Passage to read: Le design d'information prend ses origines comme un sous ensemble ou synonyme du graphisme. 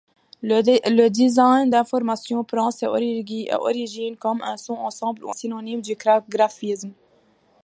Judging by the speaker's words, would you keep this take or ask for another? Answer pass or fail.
pass